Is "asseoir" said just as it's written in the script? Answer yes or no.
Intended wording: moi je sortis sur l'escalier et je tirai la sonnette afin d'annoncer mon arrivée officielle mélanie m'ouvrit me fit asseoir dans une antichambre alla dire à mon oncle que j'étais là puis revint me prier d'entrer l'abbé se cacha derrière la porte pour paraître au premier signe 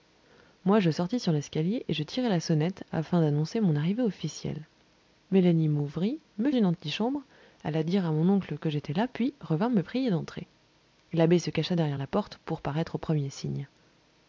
no